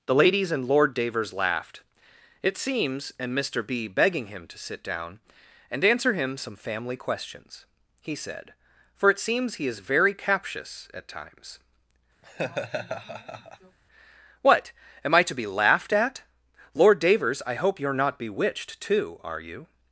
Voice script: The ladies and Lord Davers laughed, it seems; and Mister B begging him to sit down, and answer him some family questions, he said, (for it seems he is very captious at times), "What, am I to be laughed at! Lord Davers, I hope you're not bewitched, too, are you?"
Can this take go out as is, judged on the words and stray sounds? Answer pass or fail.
fail